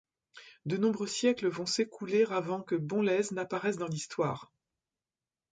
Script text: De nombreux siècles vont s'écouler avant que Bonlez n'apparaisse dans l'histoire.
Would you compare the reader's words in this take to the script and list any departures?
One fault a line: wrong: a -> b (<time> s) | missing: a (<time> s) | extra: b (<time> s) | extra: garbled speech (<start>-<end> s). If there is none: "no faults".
no faults